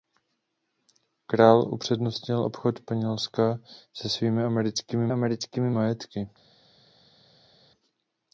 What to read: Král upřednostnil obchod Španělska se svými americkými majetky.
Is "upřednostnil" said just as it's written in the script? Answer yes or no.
yes